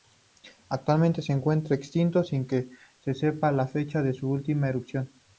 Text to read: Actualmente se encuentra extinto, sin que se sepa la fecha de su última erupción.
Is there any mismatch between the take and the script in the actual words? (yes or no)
no